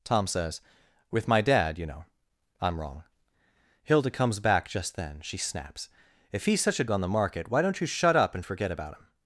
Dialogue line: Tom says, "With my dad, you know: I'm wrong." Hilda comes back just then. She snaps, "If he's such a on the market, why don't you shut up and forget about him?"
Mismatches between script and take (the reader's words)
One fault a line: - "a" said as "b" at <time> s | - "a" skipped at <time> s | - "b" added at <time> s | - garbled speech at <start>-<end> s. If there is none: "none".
none